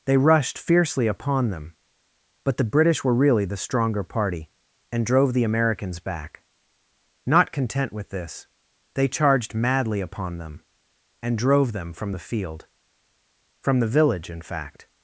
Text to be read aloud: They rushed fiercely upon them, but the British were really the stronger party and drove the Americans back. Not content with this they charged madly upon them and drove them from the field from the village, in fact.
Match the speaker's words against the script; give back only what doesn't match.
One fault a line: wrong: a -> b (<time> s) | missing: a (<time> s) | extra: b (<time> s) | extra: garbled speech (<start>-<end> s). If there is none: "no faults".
no faults